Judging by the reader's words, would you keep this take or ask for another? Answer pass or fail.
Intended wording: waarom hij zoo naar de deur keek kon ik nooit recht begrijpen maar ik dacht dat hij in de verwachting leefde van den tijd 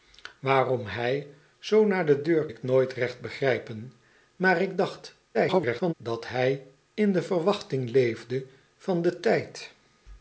fail